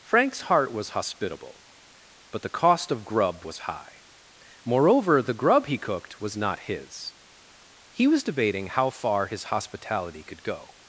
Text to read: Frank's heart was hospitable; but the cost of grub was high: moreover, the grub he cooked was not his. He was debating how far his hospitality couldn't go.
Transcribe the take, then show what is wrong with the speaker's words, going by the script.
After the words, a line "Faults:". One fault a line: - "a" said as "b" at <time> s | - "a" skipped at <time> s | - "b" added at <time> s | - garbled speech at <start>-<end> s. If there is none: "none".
Frank's heart was hospitable; but the cost of grub was high: moreover, the grub he cooked was not his. He was debating how far his hospitality could go.
Faults:
- "couldn't" said as "could" at 10.2 s